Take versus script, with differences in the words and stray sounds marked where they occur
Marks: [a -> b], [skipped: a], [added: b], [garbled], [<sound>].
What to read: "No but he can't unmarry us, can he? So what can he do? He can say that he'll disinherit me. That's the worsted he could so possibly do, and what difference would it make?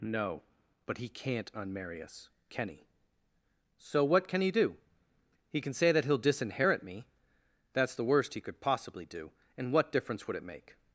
"No but he can't unmarry us, can he? So what can he do? He can say that he'll disinherit me. That's the [worsted -> worst] he could [skipped: so] possibly do, and what difference would it make?